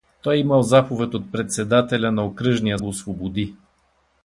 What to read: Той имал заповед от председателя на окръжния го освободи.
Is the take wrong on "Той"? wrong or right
right